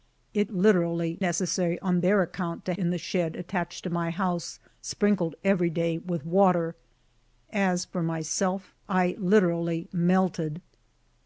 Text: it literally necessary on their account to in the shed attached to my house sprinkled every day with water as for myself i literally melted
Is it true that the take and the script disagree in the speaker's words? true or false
false